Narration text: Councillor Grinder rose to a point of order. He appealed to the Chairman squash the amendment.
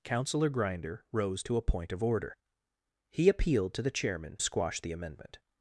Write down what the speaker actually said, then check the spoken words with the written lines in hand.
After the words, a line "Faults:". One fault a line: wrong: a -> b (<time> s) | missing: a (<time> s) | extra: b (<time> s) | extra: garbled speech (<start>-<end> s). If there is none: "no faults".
Councillor Grinder rose to a point of order. He appealed to the Chairman squash the amendment.
Faults:
no faults